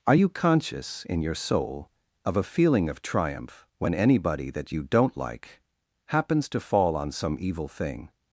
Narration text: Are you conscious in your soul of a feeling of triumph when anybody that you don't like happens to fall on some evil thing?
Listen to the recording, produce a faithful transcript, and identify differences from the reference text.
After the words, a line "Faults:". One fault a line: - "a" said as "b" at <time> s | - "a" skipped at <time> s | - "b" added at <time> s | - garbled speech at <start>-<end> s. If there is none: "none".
Are you conscious in your soul of a feeling of triumph when anybody that you don't like happens to fall on some evil thing?
Faults:
none